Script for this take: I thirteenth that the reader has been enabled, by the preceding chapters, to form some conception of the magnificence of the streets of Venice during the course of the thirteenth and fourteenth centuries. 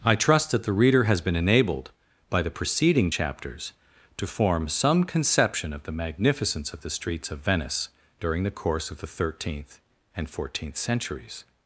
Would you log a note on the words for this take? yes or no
yes